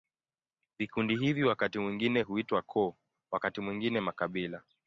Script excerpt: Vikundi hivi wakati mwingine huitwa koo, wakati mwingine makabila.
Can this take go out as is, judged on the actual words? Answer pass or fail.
pass